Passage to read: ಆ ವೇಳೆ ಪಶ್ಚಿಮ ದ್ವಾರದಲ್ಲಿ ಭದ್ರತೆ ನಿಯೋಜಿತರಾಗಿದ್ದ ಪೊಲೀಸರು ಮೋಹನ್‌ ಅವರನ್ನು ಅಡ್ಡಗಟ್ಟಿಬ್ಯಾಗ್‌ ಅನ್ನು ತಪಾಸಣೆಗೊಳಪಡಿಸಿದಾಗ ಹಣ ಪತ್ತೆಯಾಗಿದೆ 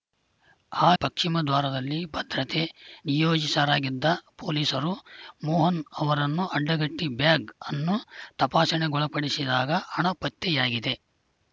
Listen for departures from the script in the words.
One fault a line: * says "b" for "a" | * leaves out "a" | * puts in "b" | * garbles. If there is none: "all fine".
* leaves out "ವೇಳೆ"